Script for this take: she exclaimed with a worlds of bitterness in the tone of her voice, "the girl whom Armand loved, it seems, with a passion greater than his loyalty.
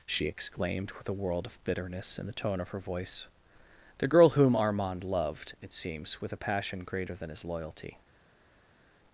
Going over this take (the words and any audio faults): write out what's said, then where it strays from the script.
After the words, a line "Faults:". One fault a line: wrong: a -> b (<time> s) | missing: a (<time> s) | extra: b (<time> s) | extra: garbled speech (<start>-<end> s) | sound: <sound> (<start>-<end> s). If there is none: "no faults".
she exclaimed with a world of bitterness in the tone of her voice, "the girl whom Armand loved, it seems, with a passion greater than his loyalty.
Faults:
wrong: worlds -> world (1.1 s)